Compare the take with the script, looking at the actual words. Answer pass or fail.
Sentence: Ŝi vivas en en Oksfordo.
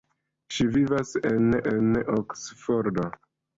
pass